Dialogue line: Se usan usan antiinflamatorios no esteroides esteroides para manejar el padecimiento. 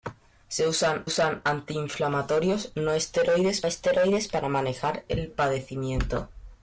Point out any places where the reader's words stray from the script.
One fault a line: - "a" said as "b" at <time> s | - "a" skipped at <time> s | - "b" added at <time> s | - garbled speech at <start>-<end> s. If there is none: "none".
none